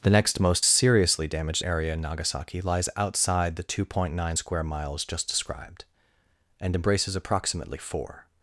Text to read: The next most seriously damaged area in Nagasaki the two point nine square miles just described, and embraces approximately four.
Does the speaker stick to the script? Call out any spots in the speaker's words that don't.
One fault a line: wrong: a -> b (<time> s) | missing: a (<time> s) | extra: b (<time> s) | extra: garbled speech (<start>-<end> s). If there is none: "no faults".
extra: lies outside (2.6 s)